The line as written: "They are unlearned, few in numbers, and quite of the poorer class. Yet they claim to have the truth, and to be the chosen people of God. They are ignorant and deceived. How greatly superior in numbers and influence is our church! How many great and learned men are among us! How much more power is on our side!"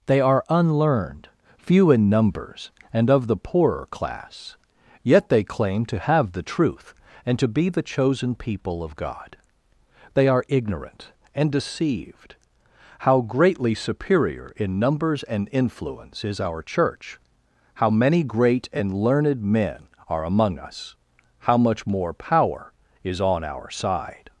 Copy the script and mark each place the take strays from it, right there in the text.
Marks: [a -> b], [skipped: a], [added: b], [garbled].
"They are unlearned, few in numbers, and [skipped: quite] of the poorer class. Yet they claim to have the truth, and to be the chosen people of God. They are ignorant and deceived. How greatly superior in numbers and influence is our church! How many great and learned men are among us! How much more power is on our side!"